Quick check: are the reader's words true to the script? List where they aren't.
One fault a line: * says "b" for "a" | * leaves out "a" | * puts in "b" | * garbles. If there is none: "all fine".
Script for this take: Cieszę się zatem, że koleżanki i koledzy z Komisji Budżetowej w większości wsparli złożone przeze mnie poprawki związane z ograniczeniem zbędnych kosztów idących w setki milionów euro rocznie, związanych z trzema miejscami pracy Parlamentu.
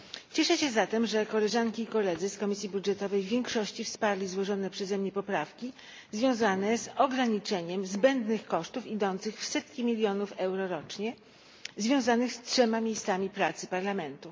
all fine